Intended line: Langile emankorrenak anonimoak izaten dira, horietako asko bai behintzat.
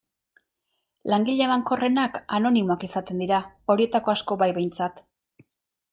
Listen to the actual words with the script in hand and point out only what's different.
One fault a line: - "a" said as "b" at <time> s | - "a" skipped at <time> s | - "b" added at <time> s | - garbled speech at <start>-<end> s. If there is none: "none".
none